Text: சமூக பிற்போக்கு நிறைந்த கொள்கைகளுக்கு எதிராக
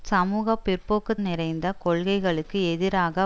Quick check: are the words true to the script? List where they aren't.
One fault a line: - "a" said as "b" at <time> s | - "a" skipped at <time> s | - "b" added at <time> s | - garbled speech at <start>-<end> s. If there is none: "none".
none